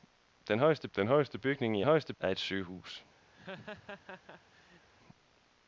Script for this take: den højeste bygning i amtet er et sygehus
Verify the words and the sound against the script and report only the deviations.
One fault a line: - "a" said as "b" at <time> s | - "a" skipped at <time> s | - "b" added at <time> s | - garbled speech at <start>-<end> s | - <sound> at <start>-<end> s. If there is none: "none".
- "den højeste" added at 0.9 s
- "amtet" said as "højeste" at 1.8 s
- laugh at 3.3-4.9 s